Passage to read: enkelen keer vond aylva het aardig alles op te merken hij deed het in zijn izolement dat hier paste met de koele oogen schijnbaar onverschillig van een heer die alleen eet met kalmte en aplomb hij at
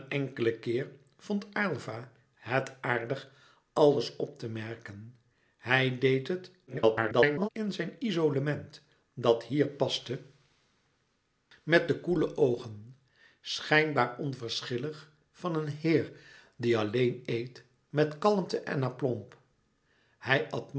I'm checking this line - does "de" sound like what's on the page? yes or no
yes